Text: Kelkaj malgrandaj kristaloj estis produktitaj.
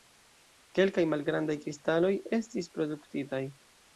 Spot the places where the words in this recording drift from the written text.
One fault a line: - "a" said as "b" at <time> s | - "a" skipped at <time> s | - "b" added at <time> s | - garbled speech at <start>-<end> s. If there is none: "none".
none